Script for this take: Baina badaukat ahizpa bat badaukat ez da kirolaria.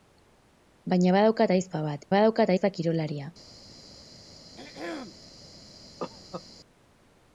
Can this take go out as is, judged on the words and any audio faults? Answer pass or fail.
fail